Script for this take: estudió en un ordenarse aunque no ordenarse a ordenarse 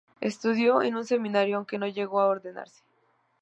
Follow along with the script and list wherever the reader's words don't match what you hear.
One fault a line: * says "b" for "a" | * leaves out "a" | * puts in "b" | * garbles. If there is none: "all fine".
* says "seminario" for "ordenarse"
* says "llegó" for "ordenarse"